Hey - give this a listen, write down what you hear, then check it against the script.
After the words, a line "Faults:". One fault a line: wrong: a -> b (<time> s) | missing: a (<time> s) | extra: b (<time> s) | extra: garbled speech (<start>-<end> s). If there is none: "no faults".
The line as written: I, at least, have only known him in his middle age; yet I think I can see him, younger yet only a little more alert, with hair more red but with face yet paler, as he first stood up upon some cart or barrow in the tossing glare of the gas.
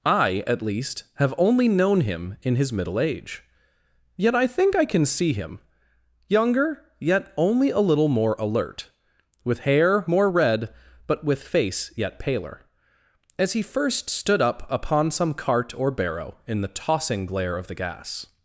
I, at least, have only known him in his middle age; yet I think I can see him, younger yet only a little more alert, with hair more red but with face yet paler, as he first stood up upon some cart or barrow in the tossing glare of the gas.
Faults:
no faults